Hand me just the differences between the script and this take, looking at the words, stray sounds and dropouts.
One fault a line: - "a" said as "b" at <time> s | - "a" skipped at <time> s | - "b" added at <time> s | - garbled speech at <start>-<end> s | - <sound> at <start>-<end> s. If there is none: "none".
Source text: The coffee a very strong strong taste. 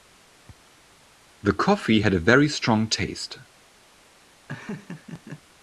- "had" added at 2.0 s
- "strong" skipped at 2.9 s
- laugh at 4.5-5.4 s